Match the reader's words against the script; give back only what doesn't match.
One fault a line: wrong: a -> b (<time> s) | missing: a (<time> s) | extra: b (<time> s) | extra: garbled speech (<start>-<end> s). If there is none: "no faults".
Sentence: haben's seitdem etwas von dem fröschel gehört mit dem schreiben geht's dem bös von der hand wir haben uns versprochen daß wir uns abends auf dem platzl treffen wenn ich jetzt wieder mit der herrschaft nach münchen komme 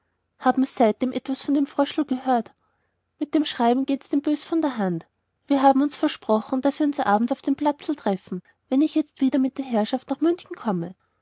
no faults